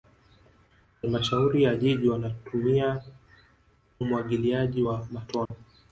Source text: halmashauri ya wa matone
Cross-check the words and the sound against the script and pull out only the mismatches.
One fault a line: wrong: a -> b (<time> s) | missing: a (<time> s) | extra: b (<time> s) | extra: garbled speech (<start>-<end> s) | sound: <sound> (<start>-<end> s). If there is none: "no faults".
extra: jiji wanatumia umwagiliaji (1.8 s)
sound: dropout (5.5-5.5 s)